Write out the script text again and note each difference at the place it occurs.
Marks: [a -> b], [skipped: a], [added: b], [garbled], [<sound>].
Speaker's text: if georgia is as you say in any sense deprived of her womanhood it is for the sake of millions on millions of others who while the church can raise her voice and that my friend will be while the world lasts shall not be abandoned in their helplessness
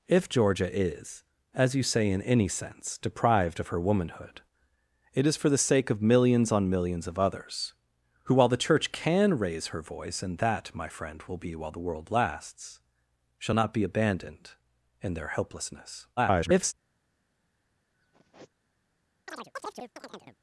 if georgia is as you say in any sense deprived of her womanhood it is for the sake of millions on millions of others who while the church can raise her voice and that my friend will be while the world lasts shall not be abandoned in their helplessness [garbled] [sigh] [chirp]